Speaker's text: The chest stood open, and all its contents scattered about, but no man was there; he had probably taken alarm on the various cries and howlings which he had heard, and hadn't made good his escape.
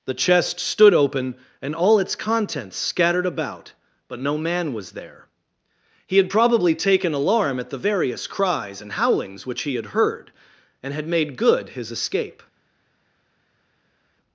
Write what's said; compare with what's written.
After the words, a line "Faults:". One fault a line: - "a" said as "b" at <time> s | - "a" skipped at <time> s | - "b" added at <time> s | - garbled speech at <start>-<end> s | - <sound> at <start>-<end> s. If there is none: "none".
The chest stood open, and all its contents scattered about, but no man was there; he had probably taken alarm at the various cries and howlings which he had heard, and had made good his escape.
Faults:
- "on" said as "at" at 7.6 s
- "hadn't" said as "had" at 10.9 s